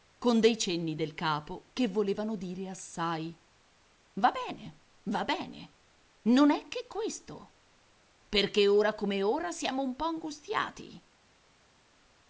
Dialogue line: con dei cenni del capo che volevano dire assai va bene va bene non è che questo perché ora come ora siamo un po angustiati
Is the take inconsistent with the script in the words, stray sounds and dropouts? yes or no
no